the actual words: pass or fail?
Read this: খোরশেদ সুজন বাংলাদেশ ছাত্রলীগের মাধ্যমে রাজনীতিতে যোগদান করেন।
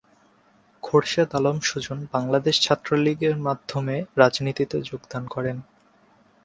fail